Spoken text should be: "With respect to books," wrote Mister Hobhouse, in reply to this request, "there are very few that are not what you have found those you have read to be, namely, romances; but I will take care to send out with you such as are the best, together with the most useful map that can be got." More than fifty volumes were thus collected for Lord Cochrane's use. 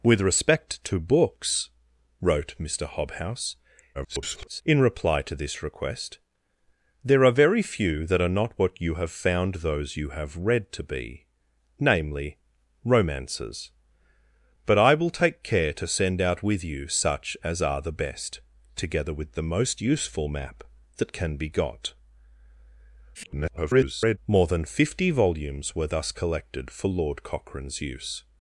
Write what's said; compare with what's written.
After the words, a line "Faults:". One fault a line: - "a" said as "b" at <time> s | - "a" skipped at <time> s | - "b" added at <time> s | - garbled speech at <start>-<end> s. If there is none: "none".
"With respect to books," wrote Mister Hobhouse, [garbled] in reply to this request, "there are very few that are not what you have found those you have read to be, namely, romances; but I will take care to send out with you such as are the best, together with the most useful map that can be got." [garbled] More than fifty volumes were thus collected for Lord Cochrane's use.
Faults:
- garbled speech at 3.9-4.6 s
- garbled speech at 23.1-24.2 s